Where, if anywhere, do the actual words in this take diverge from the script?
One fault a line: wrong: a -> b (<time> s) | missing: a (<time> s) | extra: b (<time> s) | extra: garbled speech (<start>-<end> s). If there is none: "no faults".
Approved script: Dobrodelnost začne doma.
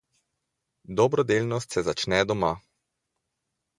extra: se (1.7 s)